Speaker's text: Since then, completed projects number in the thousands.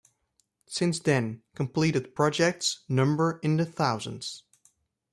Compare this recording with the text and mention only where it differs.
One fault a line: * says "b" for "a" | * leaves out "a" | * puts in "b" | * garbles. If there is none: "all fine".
all fine